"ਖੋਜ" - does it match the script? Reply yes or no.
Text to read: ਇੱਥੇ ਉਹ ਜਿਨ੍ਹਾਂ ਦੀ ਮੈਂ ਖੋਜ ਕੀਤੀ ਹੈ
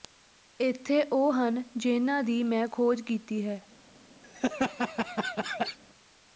yes